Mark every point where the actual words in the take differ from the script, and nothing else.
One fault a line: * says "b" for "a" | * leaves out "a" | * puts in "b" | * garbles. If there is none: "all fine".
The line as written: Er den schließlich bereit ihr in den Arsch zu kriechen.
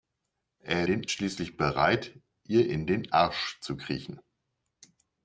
all fine